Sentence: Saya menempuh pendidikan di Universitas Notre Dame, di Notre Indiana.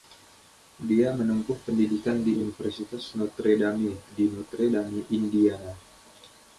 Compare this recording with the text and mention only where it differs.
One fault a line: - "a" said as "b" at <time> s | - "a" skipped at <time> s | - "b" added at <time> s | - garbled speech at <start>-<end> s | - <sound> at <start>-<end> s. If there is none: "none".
- "Saya" said as "Dia" at 0.8 s
- "Dame" added at 4.7 s